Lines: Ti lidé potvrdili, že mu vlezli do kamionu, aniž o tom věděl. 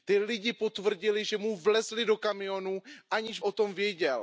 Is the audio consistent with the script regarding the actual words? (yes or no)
yes